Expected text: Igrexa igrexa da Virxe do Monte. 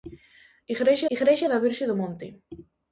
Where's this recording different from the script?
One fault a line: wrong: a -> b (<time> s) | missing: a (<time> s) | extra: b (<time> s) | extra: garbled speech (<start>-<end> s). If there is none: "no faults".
no faults